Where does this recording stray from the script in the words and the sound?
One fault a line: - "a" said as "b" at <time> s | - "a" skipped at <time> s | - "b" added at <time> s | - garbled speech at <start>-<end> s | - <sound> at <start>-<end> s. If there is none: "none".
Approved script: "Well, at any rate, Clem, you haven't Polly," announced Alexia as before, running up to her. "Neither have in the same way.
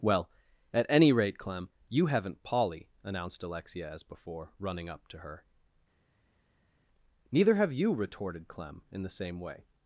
- "you retorted Clem" added at 7.7 s